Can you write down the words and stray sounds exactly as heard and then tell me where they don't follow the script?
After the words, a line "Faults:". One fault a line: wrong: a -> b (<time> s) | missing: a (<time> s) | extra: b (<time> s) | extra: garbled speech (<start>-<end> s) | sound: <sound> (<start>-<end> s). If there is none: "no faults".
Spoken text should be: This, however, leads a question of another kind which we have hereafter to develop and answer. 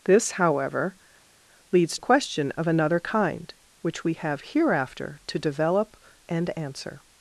This, however, leads a question of another kind which we have hereafter to develop and answer.
Faults:
no faults